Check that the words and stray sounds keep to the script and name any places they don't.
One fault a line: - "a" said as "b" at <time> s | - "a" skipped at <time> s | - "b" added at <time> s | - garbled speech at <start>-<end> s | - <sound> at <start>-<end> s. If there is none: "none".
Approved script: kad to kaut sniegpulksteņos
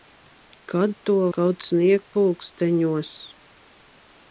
none